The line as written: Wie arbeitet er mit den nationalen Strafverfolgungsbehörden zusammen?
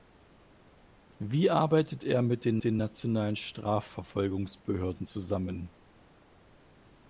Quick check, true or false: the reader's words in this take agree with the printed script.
false